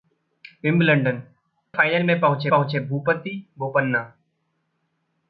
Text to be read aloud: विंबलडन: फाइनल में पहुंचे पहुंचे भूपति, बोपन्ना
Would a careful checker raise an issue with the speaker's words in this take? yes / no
no